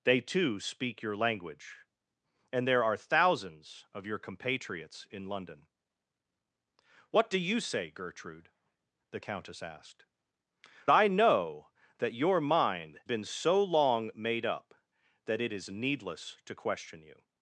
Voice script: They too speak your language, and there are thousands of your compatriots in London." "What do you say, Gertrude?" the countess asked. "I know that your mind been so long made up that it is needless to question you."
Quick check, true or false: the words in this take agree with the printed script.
true